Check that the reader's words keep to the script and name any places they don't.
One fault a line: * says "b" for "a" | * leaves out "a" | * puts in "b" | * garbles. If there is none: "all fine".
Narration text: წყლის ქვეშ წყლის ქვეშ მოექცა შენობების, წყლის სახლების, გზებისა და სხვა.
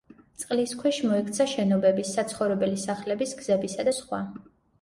* leaves out "წყლის ქვეშ"
* says "საცხოვრებელი" for "წყლის"